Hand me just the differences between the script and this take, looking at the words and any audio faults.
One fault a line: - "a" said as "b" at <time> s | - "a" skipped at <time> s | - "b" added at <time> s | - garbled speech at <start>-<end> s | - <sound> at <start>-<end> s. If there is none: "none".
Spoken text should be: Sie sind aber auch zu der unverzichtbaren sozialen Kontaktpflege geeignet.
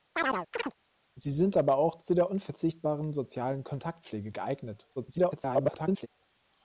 - chirp at 0.2-0.7 s
- garbled speech at 5.0-6.1 s